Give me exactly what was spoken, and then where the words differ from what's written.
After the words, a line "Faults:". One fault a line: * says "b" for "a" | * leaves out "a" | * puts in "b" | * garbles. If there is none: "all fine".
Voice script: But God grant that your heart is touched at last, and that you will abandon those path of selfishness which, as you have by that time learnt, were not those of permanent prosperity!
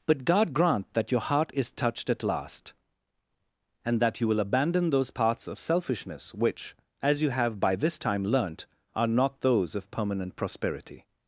But God grant that your heart is touched at last, and that you will abandon those paths of selfishness which, as you have by this time learnt, are not those of permanent prosperity!
Faults:
* says "paths" for "path"
* says "this" for "that"
* says "are" for "were"